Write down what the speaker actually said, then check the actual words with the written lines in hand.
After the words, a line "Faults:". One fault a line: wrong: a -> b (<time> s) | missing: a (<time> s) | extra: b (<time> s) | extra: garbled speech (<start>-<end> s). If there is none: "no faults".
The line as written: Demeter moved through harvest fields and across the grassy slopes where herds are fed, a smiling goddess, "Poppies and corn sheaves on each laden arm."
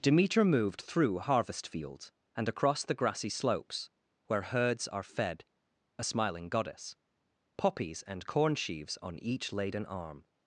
Demeter moved through harvest fields and across the grassy slopes where herds are fed, a smiling goddess, "Poppies and corn sheaves on each laden arm."
Faults:
no faults